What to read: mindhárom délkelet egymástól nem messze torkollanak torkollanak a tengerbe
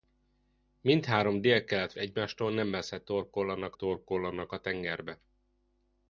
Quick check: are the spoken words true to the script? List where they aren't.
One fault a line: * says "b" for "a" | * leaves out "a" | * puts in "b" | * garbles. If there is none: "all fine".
all fine